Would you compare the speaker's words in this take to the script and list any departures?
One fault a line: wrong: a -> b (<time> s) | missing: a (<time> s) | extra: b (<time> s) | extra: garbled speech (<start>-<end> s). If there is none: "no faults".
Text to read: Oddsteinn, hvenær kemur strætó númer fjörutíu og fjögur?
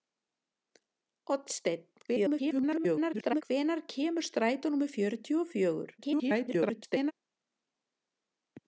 extra: garbled speech (2.1-3.4 s)
extra: garbled speech (6.0-7.1 s)